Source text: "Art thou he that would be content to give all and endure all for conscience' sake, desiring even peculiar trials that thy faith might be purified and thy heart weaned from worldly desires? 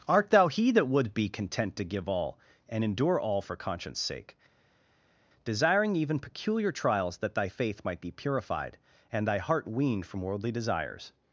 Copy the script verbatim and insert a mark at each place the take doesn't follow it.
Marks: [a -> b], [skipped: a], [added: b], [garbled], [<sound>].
"Art thou he that would be content to give all and endure all for conscience' sake, desiring even peculiar trials that thy faith might be purified and thy heart weaned from worldly desires?